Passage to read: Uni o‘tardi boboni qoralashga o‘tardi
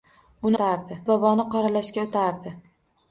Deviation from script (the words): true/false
false